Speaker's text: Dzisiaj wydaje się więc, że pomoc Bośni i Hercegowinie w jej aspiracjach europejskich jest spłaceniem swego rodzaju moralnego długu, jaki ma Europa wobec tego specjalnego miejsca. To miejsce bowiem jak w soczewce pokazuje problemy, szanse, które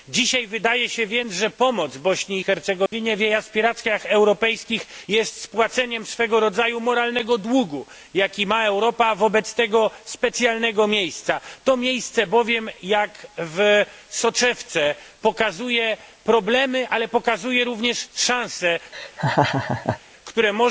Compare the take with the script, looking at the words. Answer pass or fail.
fail